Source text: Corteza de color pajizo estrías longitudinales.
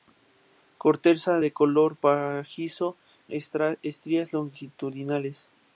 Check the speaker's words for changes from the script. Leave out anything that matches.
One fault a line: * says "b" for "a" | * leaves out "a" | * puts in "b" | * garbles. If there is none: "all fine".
all fine